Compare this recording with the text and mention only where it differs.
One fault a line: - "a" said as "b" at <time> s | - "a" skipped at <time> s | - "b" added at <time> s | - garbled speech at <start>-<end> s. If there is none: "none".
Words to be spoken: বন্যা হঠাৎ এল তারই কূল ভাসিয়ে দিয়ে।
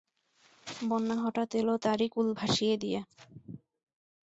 none